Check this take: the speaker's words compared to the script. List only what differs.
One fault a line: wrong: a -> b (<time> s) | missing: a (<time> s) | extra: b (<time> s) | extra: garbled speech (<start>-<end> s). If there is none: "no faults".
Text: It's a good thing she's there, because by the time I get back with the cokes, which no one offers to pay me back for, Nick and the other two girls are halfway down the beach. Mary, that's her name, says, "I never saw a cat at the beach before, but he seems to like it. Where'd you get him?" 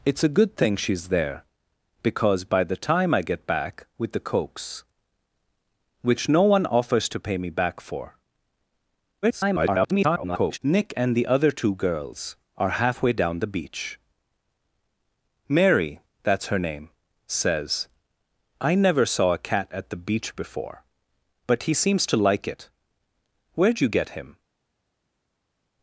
extra: garbled speech (9.2-10.6 s)